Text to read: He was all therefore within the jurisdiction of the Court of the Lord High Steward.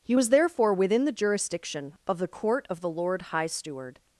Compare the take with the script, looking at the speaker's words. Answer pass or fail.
fail